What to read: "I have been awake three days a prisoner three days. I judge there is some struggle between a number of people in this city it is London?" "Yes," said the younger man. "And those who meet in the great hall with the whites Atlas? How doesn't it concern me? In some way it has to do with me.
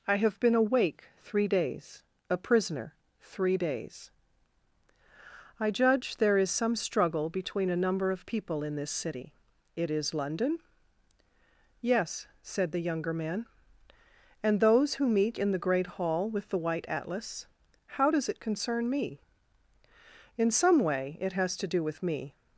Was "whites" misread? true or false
true